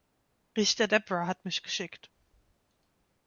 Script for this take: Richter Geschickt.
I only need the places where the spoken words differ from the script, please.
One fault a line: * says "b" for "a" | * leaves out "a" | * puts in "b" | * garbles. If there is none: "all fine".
* puts in "Debra hat mich"